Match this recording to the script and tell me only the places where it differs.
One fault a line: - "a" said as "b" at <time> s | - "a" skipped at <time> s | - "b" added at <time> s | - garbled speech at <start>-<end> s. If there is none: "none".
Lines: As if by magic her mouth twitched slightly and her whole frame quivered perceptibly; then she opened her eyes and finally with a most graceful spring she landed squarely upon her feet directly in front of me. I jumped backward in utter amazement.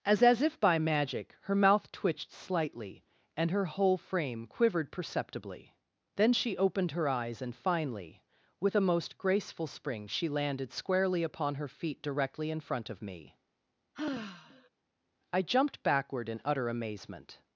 - "as" added at 0.2 s